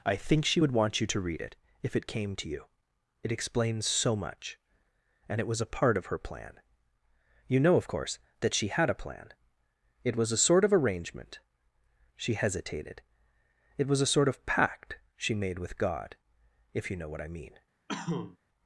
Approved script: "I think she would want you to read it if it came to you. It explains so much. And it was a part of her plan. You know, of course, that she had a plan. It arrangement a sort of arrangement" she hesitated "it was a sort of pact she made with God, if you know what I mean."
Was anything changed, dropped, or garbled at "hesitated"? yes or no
no